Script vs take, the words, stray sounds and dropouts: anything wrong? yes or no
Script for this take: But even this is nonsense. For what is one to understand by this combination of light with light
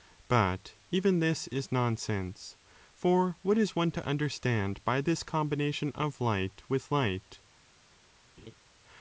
yes